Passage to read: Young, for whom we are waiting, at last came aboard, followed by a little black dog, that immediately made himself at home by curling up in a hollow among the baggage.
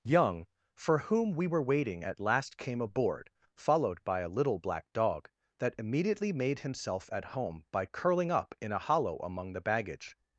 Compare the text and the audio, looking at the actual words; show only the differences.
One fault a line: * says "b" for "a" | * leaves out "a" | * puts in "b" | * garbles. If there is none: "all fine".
* says "were" for "are"